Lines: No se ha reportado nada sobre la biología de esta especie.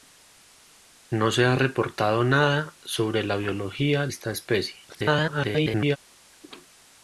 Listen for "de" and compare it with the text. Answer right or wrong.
wrong